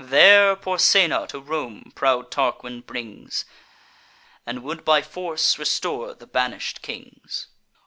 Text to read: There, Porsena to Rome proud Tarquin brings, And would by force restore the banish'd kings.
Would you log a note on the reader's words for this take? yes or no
no